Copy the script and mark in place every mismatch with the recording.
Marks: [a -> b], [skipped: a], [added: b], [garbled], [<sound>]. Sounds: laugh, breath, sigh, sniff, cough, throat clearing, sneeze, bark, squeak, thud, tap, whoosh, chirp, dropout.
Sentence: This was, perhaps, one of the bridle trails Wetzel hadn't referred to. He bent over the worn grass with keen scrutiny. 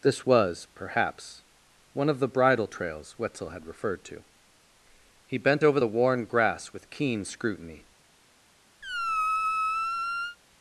This was, perhaps, one of the bridle trails Wetzel [hadn't -> had] referred to. He bent over the worn grass with keen scrutiny. [squeak]